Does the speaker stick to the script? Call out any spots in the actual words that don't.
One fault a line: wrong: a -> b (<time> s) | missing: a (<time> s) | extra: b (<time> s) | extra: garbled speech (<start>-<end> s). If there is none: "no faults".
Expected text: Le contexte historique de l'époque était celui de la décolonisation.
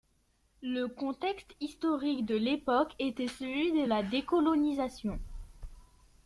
no faults